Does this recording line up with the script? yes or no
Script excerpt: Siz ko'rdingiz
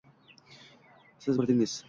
yes